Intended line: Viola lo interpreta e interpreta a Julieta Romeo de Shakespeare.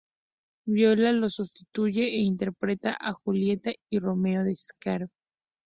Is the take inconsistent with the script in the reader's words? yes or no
yes